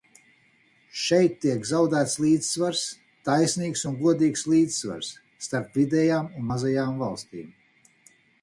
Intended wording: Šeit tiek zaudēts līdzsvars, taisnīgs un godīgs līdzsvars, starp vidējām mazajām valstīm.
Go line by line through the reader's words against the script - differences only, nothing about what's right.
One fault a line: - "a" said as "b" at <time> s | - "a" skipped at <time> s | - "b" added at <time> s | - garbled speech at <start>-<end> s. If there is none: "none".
- "un" added at 6.4 s